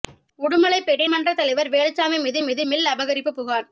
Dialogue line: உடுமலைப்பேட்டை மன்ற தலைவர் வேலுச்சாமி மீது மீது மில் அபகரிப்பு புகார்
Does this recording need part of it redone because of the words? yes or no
no